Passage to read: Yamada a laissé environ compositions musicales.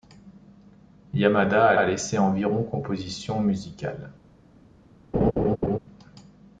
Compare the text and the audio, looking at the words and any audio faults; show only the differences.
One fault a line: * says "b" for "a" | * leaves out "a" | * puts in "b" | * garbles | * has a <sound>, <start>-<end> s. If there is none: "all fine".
* puts in "a"
* has a laugh, 5.1-5.8 s